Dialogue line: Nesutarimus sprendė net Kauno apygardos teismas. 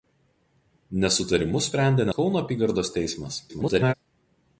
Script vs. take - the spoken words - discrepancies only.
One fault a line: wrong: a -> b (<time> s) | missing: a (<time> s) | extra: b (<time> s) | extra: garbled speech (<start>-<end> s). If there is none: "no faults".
missing: net (2.1 s)
extra: garbled speech (3.5-3.9 s)